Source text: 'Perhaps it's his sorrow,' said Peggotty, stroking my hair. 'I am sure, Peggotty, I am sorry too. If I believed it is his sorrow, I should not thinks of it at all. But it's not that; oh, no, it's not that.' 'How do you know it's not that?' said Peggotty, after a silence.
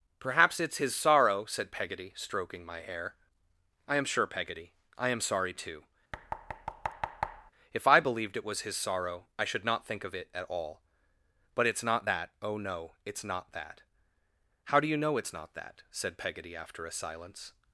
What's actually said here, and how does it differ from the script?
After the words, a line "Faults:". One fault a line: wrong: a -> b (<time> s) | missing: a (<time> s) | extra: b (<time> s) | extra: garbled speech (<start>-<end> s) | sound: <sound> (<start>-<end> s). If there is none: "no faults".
'Perhaps it's his sorrow,' said Peggotty, stroking my hair. 'I am sure, Peggotty, I am sorry too. If I believed it was his sorrow, I should not think of it at all. But it's not that; oh, no, it's not that.' 'How do you know it's not that?' said Peggotty, after a silence.
Faults:
sound: thud (6.1-7.5 s)
wrong: is -> was (8.5 s)
wrong: thinks -> think (9.9 s)